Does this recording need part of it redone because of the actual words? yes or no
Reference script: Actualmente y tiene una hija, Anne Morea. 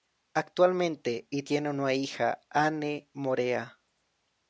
no